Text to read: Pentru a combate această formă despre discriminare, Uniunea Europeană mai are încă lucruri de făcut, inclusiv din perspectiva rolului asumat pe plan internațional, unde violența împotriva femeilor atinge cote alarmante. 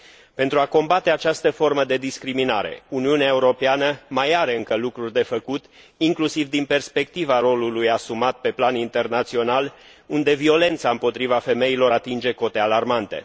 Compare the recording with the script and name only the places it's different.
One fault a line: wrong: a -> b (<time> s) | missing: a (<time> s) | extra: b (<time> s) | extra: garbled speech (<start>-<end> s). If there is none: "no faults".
wrong: despre -> de (1.8 s)